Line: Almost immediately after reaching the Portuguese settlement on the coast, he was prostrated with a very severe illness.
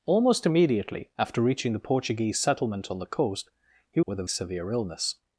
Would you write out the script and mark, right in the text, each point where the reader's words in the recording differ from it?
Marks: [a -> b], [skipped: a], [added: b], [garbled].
Almost immediately after reaching the Portuguese settlement on the coast, he [skipped: was prostrated] with a [skipped: very] severe illness.